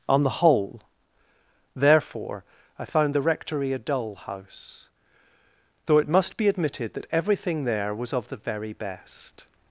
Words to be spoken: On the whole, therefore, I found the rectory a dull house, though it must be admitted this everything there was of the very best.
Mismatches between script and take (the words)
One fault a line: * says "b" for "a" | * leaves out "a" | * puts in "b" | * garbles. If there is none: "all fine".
* says "that" for "this"